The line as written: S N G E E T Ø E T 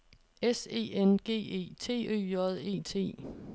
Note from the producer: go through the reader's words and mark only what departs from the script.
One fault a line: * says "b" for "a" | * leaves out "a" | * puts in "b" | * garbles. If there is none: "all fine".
* puts in "E"
* leaves out "E"
* puts in "J"